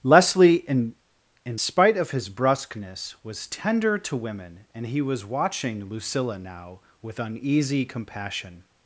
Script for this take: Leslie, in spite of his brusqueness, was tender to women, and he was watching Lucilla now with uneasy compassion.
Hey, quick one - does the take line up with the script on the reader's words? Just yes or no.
no